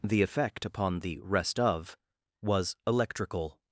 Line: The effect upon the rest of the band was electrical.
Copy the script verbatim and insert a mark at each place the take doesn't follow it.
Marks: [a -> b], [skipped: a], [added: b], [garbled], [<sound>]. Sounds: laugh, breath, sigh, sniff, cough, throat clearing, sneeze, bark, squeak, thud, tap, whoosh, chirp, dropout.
The effect upon the rest of [skipped: the band] was electrical.